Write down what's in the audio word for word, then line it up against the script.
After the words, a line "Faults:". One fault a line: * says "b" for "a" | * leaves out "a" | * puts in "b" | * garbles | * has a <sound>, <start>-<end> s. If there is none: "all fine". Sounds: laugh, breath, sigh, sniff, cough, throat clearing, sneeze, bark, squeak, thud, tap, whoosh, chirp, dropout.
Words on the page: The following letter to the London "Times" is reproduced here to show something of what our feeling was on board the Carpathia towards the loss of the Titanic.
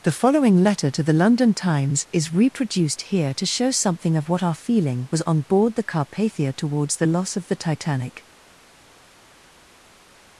The following letter to the London "Times" is reproduced here to show something of what our feeling was on board the Carpathia towards the loss of the Titanic.
Faults:
all fine